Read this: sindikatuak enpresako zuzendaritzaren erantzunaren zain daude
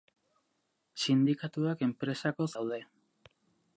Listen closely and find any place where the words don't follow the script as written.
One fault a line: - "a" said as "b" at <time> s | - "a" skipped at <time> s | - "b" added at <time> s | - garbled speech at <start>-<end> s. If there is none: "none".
- "zuzendaritzaren erantzunaren zain" skipped at 2.5 s